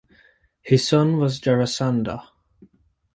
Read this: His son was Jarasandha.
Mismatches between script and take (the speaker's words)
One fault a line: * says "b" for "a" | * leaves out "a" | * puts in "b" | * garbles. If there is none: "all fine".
all fine